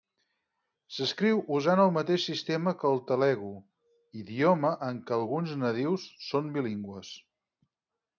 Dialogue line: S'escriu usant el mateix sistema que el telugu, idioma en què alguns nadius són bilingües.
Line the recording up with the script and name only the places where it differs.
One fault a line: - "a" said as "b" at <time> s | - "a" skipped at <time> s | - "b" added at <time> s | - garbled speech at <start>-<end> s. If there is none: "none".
none